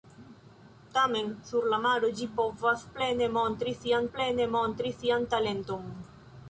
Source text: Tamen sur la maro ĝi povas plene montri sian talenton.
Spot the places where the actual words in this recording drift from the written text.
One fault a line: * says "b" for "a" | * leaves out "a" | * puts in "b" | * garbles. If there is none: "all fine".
* puts in "plene montri sian"